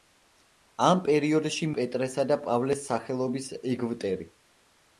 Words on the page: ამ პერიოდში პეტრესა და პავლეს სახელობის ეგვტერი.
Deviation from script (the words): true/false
false